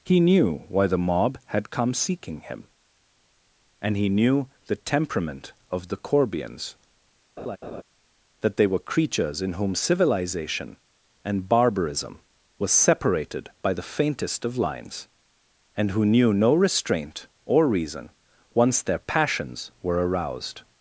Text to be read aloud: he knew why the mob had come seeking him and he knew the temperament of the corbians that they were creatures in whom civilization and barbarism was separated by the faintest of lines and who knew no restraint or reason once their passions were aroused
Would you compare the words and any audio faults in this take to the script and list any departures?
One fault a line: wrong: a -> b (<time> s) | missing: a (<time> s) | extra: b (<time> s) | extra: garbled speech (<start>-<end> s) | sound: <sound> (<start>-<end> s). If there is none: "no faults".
sound: laugh (7.4-7.8 s)